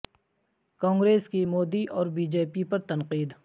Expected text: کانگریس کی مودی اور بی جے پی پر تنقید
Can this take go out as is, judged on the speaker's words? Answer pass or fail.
pass